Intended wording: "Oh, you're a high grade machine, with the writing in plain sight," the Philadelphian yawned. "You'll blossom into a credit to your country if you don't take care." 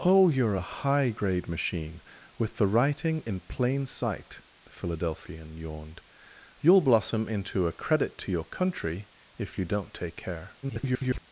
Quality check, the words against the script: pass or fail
fail